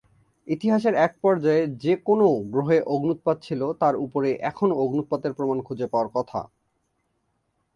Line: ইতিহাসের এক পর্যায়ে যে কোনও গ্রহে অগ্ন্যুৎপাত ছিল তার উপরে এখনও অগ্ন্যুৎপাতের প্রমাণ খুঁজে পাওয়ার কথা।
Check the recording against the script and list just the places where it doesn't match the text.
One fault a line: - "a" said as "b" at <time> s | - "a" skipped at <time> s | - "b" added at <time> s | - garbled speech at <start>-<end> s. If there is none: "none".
none